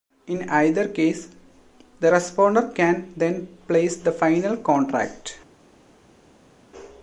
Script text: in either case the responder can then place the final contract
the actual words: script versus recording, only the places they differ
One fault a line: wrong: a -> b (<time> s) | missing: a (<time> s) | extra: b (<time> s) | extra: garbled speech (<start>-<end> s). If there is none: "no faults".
no faults